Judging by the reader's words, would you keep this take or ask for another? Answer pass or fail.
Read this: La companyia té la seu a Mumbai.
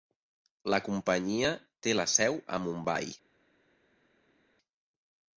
pass